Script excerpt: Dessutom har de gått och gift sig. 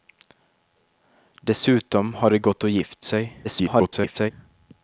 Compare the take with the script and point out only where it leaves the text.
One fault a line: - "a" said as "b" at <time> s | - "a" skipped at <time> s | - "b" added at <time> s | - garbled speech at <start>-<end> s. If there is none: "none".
- garbled speech at 3.4-4.3 s